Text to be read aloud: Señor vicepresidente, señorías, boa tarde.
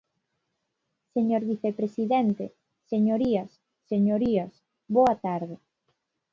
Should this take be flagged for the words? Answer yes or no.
yes